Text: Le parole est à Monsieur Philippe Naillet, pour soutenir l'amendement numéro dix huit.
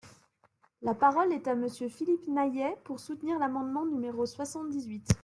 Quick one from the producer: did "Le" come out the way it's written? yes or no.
no